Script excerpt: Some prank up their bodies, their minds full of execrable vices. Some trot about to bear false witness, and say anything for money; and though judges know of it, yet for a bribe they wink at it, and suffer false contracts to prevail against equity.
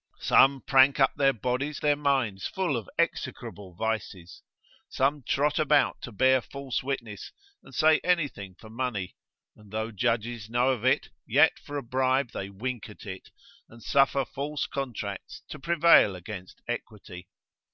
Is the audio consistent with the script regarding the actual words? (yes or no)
yes